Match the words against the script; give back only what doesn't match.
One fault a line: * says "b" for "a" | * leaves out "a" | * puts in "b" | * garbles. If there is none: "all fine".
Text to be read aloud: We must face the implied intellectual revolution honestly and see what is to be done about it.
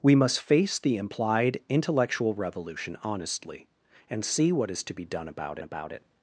* puts in "about"